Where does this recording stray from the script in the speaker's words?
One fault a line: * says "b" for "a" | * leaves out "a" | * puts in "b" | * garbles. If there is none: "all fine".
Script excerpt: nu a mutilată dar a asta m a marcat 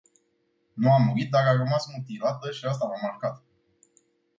* says "murit" for "mutilată"
* puts in "rămas mutilată și"